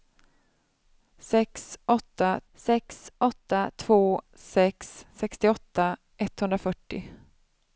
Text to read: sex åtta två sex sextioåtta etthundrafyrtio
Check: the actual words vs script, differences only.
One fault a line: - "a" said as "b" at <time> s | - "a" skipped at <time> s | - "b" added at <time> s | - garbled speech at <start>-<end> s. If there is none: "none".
- "sex åtta" added at 2.5 s